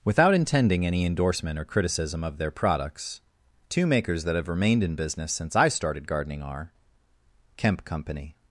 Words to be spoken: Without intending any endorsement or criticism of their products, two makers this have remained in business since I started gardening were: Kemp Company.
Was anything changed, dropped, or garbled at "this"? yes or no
yes